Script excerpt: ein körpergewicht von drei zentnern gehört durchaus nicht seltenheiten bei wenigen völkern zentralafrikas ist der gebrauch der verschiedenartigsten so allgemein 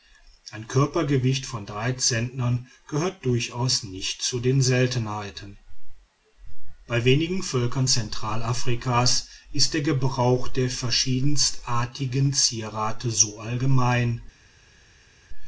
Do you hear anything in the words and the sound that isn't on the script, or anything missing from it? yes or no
yes